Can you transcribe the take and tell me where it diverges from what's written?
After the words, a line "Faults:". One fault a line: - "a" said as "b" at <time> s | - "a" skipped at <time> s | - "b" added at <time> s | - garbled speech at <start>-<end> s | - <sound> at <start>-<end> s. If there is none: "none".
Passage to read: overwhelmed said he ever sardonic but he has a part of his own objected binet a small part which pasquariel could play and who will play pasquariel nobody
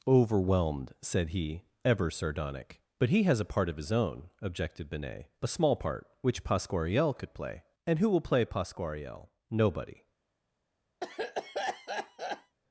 overwhelmed said he ever sardonic but he has a part of his own objected binet a small part which pasquariel could play and who will play pasquariel nobody
Faults:
- cough at 11.0-12.6 s